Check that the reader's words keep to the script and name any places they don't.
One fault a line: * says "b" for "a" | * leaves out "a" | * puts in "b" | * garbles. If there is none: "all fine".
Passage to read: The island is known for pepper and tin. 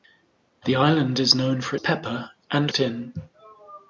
all fine